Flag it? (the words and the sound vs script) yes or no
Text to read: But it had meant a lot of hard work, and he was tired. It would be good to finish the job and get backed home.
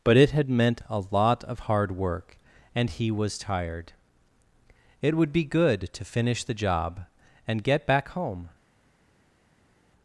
yes